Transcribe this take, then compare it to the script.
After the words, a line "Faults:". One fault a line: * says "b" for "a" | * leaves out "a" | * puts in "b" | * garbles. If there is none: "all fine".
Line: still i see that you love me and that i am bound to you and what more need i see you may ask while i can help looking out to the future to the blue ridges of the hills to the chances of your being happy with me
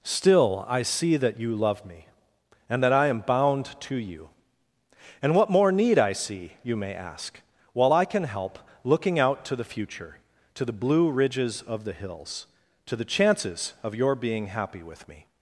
still i see that you love me and that i am bound to you and what more need i see you may ask while i can help looking out to the future to the blue ridges of the hills to the chances of your being happy with me
Faults:
all fine